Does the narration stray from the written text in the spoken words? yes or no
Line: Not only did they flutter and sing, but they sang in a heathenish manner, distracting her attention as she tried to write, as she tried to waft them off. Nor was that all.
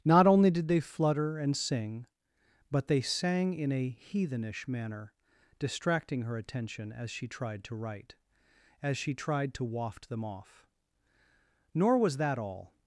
no